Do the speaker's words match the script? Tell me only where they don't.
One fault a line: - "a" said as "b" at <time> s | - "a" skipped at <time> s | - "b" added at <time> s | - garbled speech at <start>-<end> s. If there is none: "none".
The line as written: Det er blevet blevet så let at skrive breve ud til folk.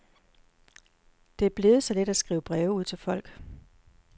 - "blevet" skipped at 1.8 s